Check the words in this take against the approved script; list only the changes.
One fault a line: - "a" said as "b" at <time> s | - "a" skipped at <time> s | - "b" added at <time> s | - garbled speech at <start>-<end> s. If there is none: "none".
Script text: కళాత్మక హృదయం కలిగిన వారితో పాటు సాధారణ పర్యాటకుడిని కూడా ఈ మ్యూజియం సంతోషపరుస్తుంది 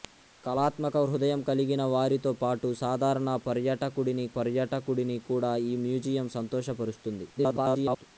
- "పర్యాటకుడిని" added at 4.4 s
- garbled speech at 7.4-8.0 s